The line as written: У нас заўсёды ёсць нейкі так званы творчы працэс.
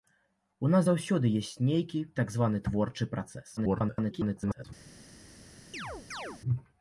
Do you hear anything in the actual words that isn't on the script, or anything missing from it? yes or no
yes